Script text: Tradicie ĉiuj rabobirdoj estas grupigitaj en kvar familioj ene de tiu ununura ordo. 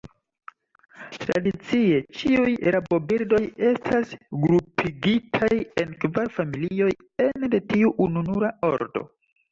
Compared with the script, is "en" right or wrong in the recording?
right